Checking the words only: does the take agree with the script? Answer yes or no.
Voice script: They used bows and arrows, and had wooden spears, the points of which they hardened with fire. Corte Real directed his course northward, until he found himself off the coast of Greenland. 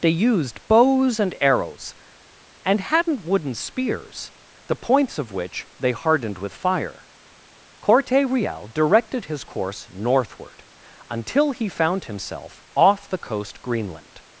no